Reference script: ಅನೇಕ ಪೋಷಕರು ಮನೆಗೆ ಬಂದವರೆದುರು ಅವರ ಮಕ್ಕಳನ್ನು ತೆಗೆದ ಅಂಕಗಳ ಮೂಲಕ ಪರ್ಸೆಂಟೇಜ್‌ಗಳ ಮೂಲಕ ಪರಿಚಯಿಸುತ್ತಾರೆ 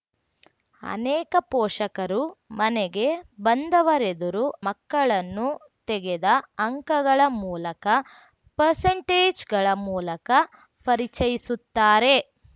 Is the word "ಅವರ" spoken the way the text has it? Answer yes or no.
no